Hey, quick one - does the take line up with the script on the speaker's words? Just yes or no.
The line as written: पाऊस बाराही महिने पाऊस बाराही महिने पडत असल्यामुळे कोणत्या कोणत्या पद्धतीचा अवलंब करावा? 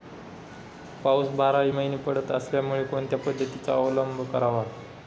no